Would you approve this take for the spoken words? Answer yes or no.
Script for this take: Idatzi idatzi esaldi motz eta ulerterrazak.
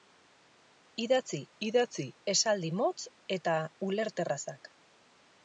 yes